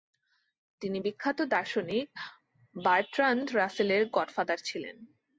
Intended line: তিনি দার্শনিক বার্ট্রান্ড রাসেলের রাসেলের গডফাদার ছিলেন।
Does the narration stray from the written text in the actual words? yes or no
yes